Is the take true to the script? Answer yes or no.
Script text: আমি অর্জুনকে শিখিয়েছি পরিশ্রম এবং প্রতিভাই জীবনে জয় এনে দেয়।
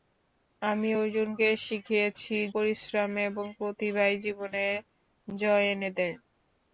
yes